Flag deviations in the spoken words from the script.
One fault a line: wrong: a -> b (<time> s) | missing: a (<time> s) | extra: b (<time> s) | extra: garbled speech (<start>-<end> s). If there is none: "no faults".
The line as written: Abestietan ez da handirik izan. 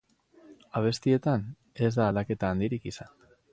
extra: aldaketa (2.1 s)